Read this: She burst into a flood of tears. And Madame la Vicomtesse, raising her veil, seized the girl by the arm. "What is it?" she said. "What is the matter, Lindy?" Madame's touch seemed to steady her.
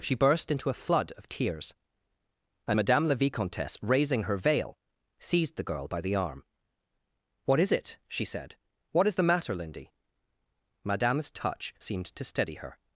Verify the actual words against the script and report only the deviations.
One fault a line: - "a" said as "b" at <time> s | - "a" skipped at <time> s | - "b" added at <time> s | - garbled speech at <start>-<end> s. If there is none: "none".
none